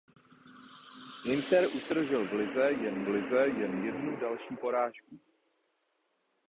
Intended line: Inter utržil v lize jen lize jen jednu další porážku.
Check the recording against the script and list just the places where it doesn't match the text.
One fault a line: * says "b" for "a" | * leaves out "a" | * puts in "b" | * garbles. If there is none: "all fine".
all fine